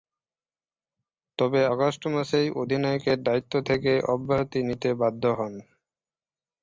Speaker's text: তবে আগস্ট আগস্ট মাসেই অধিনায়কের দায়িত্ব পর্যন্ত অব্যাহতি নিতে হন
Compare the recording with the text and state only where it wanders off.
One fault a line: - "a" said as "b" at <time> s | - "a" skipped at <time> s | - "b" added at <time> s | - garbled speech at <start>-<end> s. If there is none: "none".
- "আগস্ট" skipped at 2.0 s
- "পর্যন্ত" said as "থেকে" at 3.6 s
- "বাধ্য" added at 4.9 s